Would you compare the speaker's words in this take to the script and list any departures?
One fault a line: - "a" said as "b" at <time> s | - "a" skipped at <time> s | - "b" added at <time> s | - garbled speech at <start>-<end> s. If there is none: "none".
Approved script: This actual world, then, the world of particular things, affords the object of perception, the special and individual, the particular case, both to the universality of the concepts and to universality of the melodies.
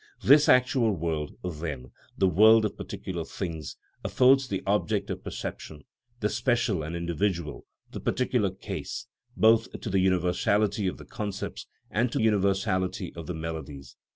none